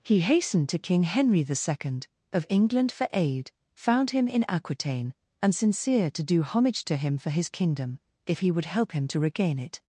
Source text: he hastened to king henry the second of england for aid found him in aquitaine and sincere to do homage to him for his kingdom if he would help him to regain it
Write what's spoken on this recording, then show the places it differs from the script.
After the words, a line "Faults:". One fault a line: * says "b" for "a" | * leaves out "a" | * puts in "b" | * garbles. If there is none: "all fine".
he hastened to king henry the second of england for aid found him in aquitaine and sincere to do homage to him for his kingdom if he would help him to regain it
Faults:
all fine